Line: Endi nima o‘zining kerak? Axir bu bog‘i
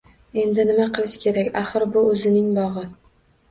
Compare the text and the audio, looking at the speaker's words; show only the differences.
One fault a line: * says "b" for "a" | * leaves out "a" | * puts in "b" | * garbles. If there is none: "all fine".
* says "qilish" for "o‘zining"
* puts in "o‘zining"